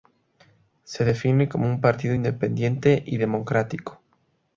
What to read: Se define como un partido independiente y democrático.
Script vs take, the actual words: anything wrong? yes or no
no